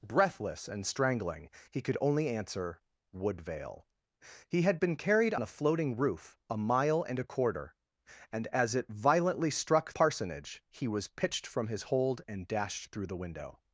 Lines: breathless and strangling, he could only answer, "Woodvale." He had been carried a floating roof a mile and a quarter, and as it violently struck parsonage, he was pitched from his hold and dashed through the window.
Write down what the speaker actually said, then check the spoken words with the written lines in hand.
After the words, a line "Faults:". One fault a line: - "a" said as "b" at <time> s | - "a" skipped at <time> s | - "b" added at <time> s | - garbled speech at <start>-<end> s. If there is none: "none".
breathless and strangling, he could only answer, "Woodvale." He had been carried a floating roof a mile and a quarter, and as it violently struck parsonage, he was pitched from his hold and dashed through the window.
Faults:
none